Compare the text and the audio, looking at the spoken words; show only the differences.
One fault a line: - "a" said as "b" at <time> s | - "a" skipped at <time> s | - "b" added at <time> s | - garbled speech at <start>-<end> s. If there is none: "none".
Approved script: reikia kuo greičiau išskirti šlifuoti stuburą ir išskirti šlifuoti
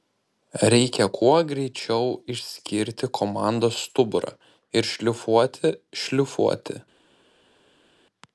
- "šlifuoti" said as "komandos" at 3.2 s
- "išskirti" said as "šlifuoti" at 4.9 s